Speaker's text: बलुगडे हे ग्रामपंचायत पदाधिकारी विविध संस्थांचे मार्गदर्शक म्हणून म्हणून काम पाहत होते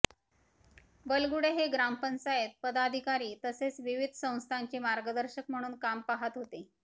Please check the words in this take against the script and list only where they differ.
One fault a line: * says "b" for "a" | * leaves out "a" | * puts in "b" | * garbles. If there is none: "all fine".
* puts in "तसेच"
* leaves out "म्हणून"